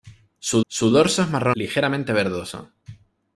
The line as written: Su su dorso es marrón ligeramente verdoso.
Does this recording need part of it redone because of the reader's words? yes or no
no